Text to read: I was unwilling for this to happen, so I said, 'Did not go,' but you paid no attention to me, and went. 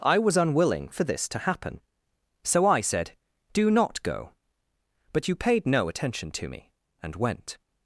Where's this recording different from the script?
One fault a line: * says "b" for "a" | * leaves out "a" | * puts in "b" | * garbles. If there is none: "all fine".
* says "Do" for "Did"